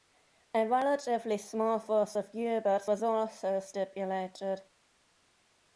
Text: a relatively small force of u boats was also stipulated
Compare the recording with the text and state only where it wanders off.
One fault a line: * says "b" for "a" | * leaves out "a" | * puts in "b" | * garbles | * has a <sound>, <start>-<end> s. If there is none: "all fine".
all fine